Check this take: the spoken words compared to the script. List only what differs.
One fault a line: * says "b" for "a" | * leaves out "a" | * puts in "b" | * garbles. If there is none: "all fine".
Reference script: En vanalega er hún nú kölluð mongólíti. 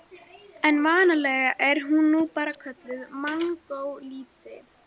* puts in "bara"